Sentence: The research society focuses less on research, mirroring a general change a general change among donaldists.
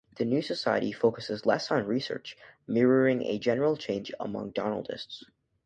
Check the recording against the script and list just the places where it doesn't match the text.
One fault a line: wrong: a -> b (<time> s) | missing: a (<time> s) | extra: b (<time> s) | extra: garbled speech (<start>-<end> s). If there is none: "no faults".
wrong: research -> new (0.2 s)
missing: a general change (4.1 s)